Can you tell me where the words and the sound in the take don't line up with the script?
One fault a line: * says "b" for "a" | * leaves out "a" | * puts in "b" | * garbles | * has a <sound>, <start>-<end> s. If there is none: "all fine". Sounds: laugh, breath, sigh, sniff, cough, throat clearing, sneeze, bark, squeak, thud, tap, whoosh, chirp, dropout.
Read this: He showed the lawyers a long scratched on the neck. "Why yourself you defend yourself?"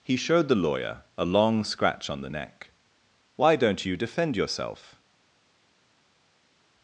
* says "lawyer" for "lawyers"
* says "scratch" for "scratched"
* says "don't" for "yourself"